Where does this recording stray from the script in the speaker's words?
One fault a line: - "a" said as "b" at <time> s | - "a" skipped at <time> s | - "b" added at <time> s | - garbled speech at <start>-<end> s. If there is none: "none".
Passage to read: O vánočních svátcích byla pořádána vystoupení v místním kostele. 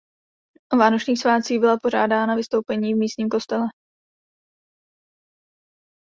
none